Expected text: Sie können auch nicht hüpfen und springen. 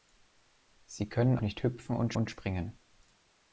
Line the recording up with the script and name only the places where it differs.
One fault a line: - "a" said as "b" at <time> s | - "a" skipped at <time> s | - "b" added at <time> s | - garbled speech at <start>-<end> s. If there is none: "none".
- "auch" skipped at 1.4 s
- "und" added at 2.1 s